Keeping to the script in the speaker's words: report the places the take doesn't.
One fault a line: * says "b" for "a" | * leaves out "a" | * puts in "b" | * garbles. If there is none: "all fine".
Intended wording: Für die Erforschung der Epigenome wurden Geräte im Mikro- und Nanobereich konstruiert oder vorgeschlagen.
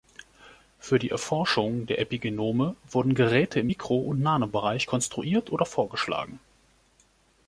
all fine